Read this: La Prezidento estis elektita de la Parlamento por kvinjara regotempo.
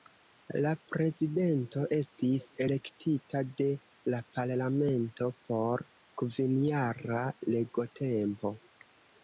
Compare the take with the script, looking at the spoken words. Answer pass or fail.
pass